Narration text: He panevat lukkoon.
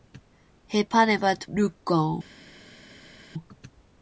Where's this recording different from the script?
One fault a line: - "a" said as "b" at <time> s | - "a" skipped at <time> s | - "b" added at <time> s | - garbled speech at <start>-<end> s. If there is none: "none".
none